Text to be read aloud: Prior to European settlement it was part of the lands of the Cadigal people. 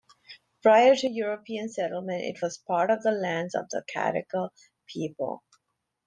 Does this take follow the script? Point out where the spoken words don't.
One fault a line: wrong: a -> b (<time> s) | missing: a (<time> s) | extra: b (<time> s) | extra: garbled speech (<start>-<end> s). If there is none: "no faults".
no faults